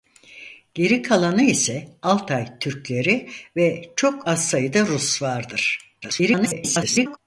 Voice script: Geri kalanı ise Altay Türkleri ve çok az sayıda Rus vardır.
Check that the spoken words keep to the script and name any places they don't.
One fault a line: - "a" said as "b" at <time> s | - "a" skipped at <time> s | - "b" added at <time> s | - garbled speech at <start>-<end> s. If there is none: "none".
- garbled speech at 6.0-7.2 s